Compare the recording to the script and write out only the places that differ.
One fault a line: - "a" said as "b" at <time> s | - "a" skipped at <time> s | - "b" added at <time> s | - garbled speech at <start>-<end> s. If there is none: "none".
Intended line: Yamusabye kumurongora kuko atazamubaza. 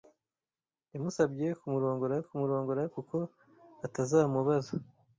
- "kumurongora" added at 2.3 s